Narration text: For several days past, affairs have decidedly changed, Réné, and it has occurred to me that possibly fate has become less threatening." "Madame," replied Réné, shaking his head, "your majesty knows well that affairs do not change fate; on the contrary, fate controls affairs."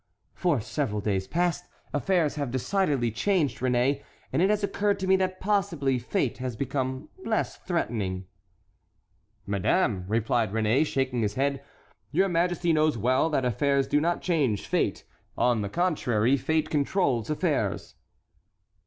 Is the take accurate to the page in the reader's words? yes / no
yes